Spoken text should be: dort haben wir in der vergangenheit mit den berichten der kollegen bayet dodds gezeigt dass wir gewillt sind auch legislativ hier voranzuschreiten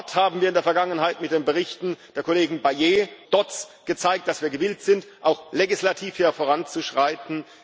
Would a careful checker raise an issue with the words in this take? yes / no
no